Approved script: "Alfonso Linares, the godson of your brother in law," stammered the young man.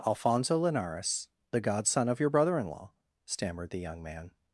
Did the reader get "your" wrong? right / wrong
right